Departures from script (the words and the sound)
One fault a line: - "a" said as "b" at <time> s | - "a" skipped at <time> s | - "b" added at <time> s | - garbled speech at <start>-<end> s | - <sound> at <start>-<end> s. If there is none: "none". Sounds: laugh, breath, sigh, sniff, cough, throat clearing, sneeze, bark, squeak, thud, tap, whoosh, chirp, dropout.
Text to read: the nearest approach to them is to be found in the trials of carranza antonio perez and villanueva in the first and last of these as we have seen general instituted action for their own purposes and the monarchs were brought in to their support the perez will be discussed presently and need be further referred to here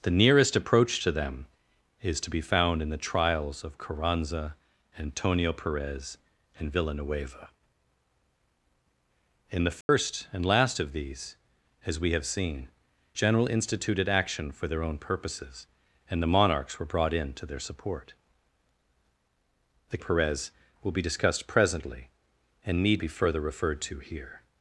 - dropout at 9.8-9.9 s